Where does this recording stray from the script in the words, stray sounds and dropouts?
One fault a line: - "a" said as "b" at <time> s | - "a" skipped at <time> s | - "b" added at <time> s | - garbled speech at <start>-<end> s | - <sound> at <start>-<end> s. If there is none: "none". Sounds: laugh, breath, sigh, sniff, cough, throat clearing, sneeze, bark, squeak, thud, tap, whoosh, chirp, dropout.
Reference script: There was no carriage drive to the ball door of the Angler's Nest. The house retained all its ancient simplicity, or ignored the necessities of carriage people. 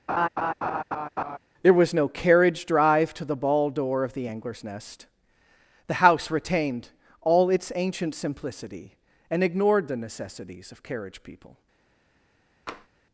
- laugh at 0.1-1.4 s
- "or" said as "and" at 9.3 s
- tap at 12.7-12.9 s